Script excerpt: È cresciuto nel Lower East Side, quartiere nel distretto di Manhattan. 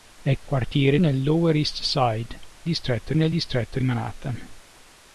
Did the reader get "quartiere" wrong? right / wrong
wrong